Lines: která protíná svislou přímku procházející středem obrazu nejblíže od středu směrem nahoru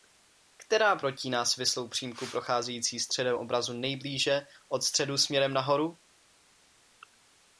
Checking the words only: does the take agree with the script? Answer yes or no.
yes